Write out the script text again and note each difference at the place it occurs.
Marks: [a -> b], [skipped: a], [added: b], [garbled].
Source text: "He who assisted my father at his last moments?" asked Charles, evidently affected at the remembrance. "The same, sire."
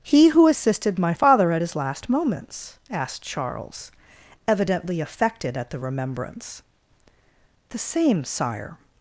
"He who assisted my father at his last moments?" asked Charles, evidently affected at the remembrance. "The same, sire."